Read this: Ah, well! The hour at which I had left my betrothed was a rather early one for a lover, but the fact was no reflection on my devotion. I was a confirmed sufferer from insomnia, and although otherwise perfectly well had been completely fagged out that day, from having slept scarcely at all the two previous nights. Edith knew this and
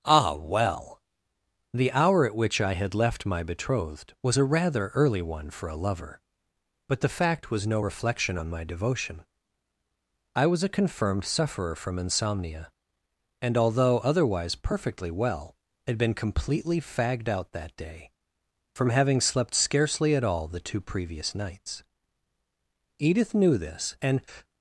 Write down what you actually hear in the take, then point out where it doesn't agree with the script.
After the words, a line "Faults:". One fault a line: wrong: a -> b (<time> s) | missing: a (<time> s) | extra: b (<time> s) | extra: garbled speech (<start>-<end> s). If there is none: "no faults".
Ah, well! The hour at which I had left my betrothed was a rather early one for a lover, but the fact was no reflection on my devotion. I was a confirmed sufferer from insomnia, and although otherwise perfectly well had been completely fagged out that day, from having slept scarcely at all the two previous nights. Edith knew this and
Faults:
no faults